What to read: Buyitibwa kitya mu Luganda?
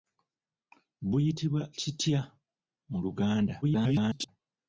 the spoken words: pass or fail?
fail